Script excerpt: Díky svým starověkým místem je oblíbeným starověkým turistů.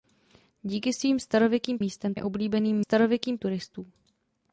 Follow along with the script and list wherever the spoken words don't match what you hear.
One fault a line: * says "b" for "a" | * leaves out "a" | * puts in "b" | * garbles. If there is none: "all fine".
all fine